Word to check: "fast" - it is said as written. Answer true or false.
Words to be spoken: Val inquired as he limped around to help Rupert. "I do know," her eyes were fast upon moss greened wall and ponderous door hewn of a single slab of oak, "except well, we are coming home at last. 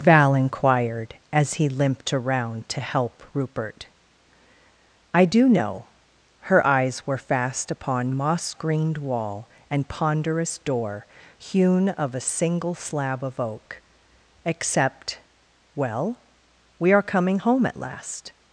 true